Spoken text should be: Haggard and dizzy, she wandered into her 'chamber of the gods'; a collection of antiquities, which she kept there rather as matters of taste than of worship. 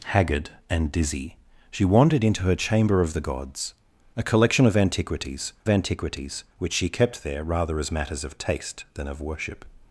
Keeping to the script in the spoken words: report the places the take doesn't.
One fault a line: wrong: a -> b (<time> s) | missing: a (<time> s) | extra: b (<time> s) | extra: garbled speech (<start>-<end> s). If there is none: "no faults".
extra: antiquities (5.7 s)